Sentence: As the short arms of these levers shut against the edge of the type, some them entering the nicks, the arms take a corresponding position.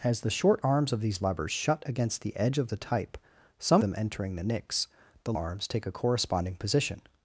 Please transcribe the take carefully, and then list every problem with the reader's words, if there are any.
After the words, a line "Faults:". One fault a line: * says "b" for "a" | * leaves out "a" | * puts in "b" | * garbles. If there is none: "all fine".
As the short arms of these levers shut against the edge of the type, some them entering the nicks, the arms take a corresponding position.
Faults:
all fine